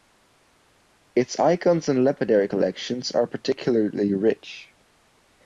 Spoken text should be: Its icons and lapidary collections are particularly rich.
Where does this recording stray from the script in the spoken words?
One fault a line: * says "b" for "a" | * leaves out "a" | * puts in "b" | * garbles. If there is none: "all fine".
all fine